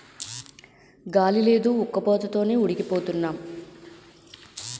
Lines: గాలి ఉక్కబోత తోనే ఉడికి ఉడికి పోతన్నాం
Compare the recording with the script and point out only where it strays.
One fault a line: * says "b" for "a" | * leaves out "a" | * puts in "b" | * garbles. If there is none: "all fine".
* puts in "లేదు"
* leaves out "ఉడికి"